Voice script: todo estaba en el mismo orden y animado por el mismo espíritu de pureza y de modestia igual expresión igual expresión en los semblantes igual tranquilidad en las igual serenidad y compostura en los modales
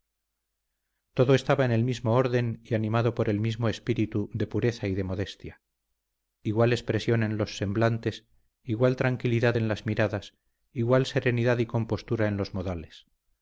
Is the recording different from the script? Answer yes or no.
yes